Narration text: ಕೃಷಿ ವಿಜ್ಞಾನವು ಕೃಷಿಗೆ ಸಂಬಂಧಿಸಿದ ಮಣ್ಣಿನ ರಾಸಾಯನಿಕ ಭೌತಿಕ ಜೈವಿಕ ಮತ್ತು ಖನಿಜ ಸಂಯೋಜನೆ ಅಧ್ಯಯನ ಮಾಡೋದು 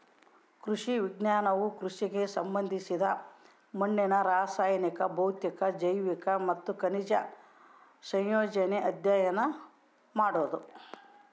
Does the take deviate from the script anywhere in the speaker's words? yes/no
no